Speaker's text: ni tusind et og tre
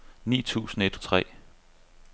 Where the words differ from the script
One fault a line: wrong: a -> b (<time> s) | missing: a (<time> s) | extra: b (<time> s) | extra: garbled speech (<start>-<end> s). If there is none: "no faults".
no faults